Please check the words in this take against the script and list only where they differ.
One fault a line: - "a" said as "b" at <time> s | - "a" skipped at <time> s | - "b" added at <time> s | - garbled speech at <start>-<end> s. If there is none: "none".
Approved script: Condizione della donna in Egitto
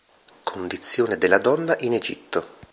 none